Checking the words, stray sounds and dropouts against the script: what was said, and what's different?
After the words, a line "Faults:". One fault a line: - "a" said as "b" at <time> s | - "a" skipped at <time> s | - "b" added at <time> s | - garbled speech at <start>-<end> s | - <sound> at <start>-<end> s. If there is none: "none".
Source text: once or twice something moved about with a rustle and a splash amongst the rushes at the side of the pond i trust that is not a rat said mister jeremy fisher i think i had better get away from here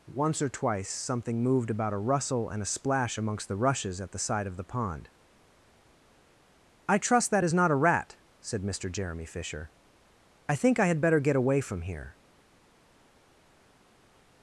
once or twice something moved about a rustle and a splash amongst the rushes at the side of the pond i trust that is not a rat said mister jeremy fisher i think i had better get away from here
Faults:
- "with" skipped at 1.9 s